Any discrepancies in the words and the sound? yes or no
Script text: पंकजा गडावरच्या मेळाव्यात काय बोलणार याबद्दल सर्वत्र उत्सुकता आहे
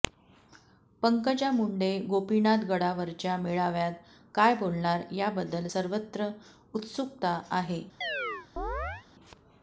yes